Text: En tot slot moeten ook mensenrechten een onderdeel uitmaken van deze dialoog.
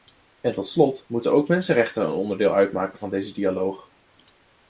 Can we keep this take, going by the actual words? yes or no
yes